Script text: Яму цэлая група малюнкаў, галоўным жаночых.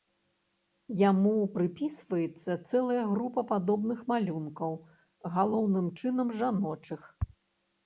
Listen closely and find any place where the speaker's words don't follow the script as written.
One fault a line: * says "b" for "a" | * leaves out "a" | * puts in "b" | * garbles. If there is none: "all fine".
* puts in "прыпісваецца"
* puts in "падобных"
* puts in "чынам"